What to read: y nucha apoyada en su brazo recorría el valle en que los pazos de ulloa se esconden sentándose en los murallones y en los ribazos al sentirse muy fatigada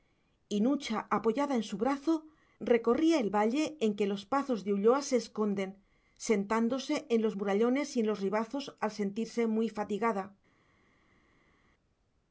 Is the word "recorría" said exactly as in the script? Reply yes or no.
yes